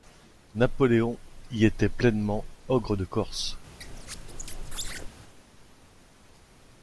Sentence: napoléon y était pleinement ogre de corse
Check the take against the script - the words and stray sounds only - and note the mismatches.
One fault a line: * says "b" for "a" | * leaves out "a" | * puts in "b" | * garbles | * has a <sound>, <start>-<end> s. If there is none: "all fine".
* has a squeak, 3.8-5.1 s